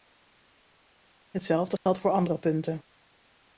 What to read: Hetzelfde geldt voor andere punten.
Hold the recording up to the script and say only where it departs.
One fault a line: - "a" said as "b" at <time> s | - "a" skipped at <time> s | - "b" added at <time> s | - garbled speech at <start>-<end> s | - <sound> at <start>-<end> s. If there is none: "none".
- dropout at 1.8-1.9 s